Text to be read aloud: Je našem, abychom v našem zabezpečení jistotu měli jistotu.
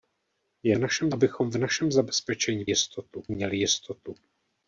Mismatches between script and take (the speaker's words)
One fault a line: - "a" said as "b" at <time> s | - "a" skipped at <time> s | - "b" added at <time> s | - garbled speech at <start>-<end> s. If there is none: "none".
none